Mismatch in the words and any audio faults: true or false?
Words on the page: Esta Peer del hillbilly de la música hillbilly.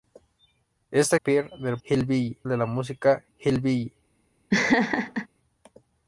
true